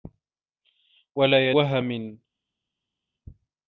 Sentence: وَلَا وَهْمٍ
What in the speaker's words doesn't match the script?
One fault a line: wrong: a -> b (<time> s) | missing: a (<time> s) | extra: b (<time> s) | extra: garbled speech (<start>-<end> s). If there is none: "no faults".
no faults